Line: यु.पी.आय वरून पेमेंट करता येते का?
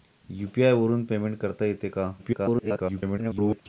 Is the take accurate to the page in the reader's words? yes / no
no